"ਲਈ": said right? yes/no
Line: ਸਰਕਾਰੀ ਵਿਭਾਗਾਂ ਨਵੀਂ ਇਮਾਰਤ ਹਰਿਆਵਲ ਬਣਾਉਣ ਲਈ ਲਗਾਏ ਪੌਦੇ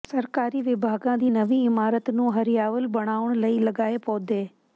yes